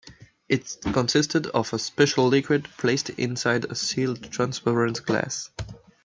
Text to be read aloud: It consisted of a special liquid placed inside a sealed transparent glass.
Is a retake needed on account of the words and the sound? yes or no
no